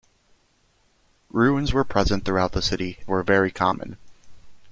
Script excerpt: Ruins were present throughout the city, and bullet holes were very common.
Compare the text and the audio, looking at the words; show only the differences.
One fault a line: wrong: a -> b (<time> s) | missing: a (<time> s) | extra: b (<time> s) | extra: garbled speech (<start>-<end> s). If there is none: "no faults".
missing: and bullet holes (3.0 s)